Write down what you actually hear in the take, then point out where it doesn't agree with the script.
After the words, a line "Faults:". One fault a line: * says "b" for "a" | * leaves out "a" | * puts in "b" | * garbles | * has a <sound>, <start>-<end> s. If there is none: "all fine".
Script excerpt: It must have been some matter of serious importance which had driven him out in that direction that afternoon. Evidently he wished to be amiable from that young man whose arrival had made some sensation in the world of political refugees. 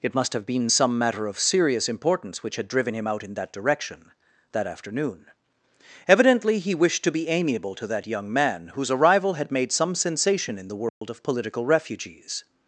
It must have been some matter of serious importance which had driven him out in that direction that afternoon. Evidently he wished to be amiable to that young man whose arrival had made some sensation in the world of political refugees.
Faults:
* says "to" for "from"
* has a dropout, 10.9-11.0 s